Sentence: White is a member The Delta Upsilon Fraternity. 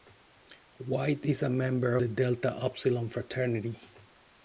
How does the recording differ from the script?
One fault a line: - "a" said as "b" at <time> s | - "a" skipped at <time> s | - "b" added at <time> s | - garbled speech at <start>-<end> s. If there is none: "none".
none